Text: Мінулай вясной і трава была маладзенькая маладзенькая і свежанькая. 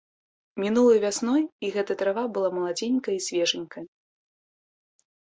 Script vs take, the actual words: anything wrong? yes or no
yes